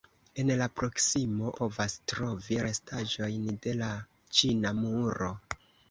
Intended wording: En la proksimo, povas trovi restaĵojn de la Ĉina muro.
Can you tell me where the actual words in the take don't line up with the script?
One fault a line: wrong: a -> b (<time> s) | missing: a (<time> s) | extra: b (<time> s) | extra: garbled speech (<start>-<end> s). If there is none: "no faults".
no faults